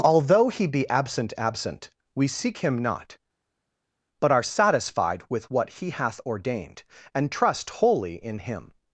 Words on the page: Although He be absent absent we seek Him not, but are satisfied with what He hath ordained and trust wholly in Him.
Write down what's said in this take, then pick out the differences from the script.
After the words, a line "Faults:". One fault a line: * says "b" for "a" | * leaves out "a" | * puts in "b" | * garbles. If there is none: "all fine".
Although He be absent absent we seek Him not, but are satisfied with what He hath ordained and trust wholly in Him.
Faults:
all fine